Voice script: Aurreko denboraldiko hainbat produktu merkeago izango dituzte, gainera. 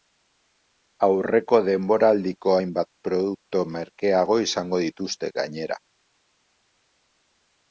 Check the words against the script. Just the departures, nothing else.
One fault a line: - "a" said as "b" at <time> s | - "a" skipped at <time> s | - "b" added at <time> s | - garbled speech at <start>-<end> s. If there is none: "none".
none